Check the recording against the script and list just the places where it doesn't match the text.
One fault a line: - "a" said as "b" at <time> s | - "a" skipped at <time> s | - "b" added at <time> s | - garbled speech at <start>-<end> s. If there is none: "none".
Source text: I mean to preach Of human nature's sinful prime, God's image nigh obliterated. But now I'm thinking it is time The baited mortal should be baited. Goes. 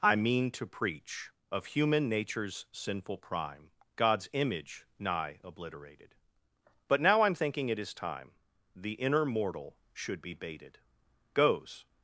- "baited" said as "inner" at 8.9 s